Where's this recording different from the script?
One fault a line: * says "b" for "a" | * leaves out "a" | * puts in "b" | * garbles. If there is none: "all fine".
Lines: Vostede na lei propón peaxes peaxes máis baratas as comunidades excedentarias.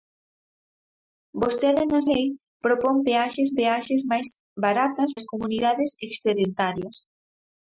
all fine